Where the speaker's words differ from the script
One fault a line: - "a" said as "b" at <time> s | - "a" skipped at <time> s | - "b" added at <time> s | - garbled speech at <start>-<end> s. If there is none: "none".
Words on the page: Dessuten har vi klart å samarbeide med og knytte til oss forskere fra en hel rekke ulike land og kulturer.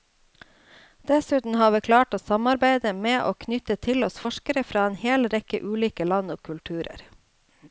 none